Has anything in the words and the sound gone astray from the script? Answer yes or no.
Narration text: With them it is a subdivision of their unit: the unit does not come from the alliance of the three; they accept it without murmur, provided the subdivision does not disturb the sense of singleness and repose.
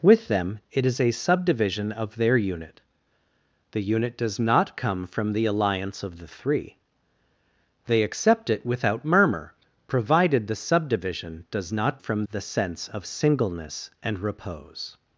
yes